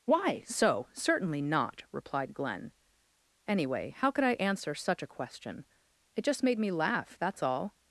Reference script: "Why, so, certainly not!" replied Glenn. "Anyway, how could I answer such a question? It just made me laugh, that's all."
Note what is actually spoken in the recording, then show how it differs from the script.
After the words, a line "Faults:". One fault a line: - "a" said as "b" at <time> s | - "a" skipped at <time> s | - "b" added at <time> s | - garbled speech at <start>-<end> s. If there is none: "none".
"Why, so, certainly not!" replied Glenn. "Anyway, how could I answer such a question? It just made me laugh, that's all."
Faults:
none